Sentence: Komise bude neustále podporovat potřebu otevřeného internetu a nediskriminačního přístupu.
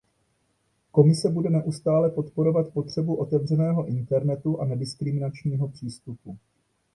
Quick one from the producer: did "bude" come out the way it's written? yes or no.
yes